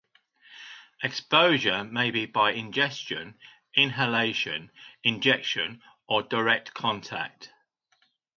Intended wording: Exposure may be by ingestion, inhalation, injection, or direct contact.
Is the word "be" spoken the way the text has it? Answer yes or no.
yes